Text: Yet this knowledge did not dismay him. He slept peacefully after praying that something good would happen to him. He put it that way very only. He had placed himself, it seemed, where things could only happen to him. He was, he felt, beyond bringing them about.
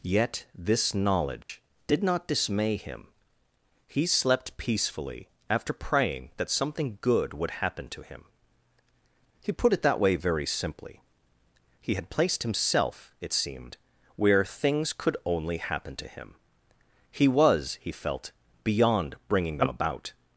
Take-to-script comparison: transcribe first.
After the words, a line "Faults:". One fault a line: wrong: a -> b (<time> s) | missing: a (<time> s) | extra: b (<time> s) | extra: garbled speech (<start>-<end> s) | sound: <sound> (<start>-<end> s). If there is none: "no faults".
Yet this knowledge did not dismay him. He slept peacefully after praying that something good would happen to him. He put it that way very simply. He had placed himself, it seemed, where things could only happen to him. He was, he felt, beyond bringing them about.
Faults:
sound: dropout (1.4-1.5 s)
wrong: only -> simply (10.5 s)